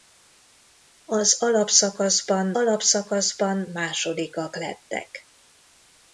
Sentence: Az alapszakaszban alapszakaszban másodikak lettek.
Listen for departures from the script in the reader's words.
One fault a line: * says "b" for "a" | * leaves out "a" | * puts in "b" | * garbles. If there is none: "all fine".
all fine